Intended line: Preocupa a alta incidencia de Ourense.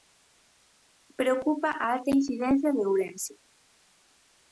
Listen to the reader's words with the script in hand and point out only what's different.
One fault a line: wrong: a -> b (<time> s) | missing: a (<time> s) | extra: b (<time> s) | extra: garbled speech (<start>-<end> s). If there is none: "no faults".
no faults